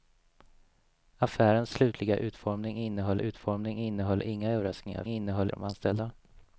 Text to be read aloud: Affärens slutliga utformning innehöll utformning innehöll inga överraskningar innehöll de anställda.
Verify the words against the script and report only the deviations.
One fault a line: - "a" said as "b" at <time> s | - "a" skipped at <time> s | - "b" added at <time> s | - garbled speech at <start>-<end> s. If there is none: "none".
none